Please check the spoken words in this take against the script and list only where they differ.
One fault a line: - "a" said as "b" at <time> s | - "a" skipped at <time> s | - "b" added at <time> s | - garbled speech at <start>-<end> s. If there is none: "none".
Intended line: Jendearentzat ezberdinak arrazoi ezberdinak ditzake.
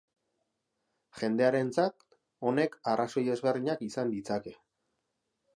- "ezberdinak" said as "honek" at 2.5 s
- "izan" added at 3.9 s